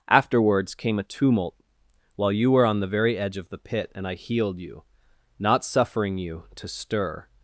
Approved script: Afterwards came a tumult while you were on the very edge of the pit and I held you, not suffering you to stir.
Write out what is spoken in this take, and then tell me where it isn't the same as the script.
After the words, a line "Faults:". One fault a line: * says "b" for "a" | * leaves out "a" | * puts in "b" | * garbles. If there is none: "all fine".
Afterwards came a tumult while you were on the very edge of the pit and I healed you, not suffering you to stir.
Faults:
* says "healed" for "held"